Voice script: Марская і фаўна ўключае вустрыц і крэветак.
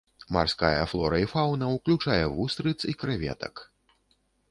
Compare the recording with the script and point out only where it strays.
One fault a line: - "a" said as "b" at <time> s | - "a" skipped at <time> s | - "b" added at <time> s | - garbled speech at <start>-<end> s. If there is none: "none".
- "флора" added at 0.9 s